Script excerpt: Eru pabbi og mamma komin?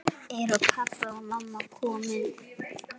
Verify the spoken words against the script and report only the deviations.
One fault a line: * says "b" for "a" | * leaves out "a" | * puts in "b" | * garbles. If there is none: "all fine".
all fine